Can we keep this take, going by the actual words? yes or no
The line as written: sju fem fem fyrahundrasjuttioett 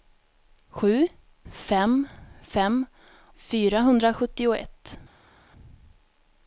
yes